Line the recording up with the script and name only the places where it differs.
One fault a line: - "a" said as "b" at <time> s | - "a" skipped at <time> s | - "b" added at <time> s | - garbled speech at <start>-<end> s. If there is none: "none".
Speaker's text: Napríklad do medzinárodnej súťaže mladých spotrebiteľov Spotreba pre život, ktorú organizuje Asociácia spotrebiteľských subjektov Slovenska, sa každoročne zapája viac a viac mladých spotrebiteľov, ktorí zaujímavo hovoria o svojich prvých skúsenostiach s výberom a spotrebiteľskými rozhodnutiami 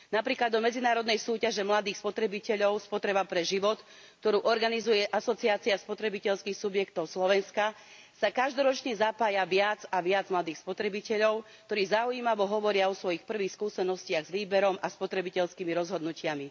none